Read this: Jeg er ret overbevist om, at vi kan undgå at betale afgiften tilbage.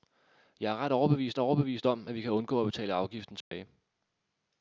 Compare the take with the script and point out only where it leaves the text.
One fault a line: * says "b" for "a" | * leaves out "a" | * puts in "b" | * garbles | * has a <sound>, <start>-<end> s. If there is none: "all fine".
* puts in "overbevist"
* has a dropout, 3.4-3.5 s